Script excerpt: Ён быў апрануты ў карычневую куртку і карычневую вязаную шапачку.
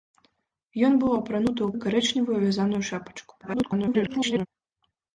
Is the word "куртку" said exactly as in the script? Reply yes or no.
no